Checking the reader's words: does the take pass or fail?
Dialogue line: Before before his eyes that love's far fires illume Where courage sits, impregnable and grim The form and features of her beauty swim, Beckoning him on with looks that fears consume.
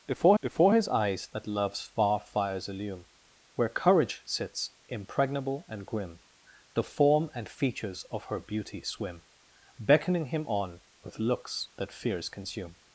pass